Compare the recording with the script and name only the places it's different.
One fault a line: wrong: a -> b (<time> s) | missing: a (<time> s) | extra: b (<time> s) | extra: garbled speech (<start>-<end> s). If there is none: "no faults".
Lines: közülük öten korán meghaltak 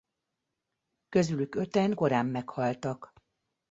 no faults